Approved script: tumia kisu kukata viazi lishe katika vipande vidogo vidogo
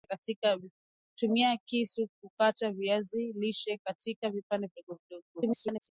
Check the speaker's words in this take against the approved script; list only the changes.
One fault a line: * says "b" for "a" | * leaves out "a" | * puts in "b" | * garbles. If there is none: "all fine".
* garbles